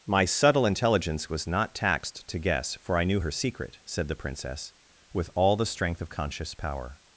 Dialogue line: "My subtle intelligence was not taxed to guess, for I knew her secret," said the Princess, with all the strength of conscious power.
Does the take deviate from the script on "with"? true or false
false